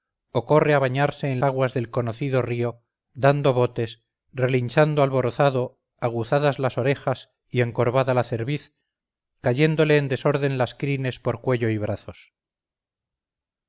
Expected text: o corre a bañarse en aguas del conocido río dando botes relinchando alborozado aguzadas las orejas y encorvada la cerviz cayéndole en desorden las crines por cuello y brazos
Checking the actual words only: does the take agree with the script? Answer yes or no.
yes